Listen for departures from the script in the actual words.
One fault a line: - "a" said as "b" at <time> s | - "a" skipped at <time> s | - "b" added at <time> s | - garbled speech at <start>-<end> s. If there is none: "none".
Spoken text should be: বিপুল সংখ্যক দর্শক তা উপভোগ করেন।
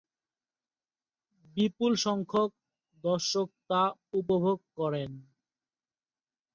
none